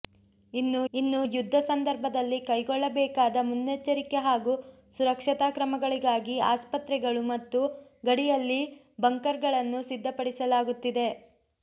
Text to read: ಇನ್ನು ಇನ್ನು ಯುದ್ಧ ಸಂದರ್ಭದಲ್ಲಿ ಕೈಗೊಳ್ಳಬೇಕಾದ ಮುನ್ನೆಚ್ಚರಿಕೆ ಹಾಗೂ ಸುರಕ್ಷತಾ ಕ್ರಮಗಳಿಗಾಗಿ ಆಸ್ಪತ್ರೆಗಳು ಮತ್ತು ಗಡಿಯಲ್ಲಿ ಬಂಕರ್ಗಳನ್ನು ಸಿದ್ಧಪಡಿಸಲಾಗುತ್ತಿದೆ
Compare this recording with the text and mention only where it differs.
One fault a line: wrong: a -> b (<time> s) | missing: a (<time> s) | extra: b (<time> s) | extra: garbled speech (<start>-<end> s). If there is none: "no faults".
no faults